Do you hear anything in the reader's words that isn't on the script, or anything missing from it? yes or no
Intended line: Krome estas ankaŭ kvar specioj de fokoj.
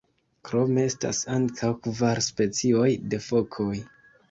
no